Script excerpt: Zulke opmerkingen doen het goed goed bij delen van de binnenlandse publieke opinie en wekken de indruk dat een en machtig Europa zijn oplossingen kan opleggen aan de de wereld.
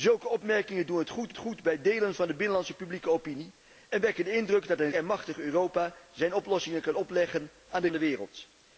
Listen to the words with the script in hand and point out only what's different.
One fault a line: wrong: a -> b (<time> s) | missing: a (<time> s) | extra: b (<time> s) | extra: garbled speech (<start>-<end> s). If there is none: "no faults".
no faults